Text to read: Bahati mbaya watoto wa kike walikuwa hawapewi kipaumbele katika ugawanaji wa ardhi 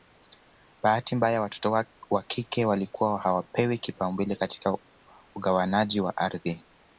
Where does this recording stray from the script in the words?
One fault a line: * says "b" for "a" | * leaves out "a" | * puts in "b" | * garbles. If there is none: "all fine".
all fine